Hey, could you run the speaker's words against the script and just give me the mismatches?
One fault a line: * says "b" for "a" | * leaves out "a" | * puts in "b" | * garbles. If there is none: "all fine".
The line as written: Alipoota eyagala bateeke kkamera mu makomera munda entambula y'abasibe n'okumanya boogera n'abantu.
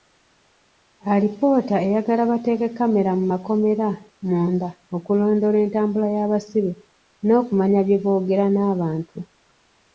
* puts in "okulondoola"
* puts in "bye"